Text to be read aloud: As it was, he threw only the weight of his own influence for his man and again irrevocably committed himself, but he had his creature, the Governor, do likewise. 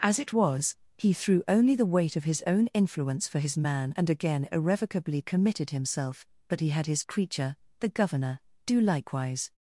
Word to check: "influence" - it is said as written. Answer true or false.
true